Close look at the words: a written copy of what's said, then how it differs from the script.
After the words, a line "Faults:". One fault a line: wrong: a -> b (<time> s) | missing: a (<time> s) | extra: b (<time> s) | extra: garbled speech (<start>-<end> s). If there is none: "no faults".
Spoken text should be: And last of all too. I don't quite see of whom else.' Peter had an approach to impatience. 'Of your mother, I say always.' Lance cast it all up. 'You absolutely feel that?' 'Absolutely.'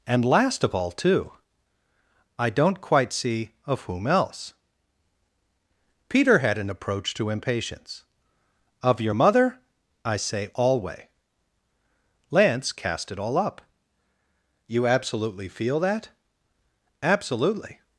And last of all too. I don't quite see of whom else.' Peter had an approach to impatience. 'Of your mother, I say alway.' Lance cast it all up. 'You absolutely feel that?' 'Absolutely.'
Faults:
wrong: always -> alway (10.5 s)